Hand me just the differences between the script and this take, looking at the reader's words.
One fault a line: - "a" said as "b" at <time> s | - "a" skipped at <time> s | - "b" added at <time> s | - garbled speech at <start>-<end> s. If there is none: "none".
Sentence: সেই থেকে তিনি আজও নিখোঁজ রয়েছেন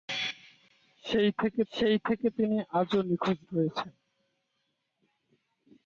- "সেই থেকে" added at 1.7 s